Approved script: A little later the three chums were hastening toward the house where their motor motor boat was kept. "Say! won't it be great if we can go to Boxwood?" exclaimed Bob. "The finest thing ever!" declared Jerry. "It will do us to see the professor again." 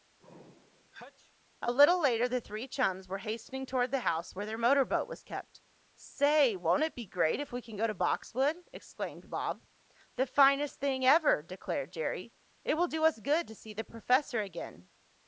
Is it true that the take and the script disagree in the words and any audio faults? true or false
true